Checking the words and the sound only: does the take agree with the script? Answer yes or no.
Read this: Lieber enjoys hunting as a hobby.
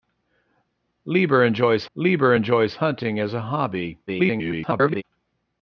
no